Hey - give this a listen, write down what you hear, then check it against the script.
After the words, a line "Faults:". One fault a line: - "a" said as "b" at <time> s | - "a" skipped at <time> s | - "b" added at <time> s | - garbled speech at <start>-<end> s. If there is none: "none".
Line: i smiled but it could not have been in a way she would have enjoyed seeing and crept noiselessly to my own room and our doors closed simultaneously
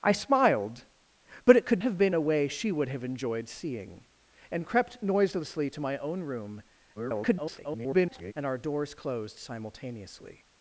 i smiled but it could have been a way she would have enjoyed seeing and crept noiselessly to my own room [garbled] and our doors closed simultaneously
Faults:
- "not" skipped at 1.8 s
- "in" skipped at 2.1 s
- garbled speech at 7.0-8.3 s